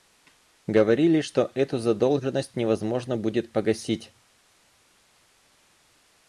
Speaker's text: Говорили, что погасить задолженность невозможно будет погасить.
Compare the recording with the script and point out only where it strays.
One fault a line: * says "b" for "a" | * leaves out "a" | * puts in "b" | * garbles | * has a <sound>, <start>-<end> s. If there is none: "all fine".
* says "эту" for "погасить"